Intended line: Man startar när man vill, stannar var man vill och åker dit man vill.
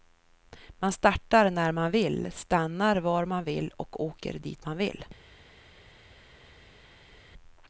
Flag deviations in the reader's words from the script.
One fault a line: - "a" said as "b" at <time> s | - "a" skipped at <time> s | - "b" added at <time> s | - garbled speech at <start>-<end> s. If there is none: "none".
none